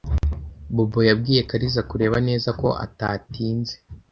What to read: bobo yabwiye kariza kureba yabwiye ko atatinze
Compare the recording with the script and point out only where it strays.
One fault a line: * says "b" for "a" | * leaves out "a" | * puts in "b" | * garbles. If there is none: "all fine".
* says "neza" for "yabwiye"